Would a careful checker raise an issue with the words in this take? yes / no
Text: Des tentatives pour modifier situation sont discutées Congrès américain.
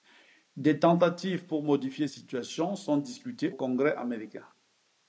no